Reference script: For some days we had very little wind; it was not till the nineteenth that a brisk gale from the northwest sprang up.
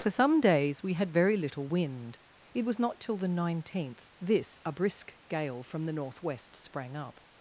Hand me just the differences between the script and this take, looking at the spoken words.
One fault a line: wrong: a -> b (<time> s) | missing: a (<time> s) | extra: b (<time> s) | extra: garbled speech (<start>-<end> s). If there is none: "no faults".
wrong: that -> this (4.2 s)